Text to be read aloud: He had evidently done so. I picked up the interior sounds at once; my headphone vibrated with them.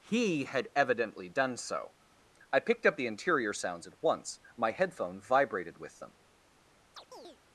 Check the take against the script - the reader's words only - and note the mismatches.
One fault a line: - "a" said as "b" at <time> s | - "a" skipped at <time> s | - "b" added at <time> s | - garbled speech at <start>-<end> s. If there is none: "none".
none